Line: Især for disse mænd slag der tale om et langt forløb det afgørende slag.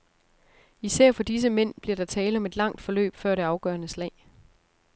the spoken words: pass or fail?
fail